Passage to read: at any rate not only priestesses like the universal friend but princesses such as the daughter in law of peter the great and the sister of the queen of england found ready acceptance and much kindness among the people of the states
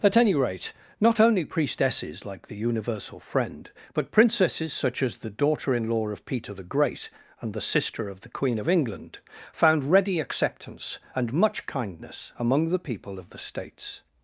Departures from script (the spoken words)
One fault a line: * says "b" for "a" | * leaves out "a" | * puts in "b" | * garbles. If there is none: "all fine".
all fine